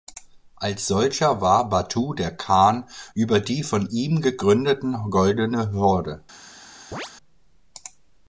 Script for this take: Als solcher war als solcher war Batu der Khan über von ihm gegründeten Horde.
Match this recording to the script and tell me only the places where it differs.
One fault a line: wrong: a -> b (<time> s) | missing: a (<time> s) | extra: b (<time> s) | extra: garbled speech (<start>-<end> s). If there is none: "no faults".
missing: als solcher war (1.7 s)
extra: die (3.4 s)
extra: Goldene (5.1 s)